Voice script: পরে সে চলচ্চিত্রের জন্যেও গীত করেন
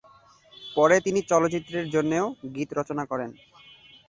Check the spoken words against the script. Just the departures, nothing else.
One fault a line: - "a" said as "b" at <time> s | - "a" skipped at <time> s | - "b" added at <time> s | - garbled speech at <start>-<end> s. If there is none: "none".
- "সে" said as "তিনি" at 1.0 s
- "রচনা" added at 2.7 s